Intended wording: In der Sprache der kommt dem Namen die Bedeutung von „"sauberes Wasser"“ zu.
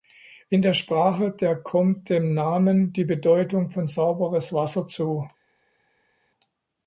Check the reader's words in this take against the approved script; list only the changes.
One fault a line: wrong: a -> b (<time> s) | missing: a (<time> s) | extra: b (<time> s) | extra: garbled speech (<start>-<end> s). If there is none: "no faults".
no faults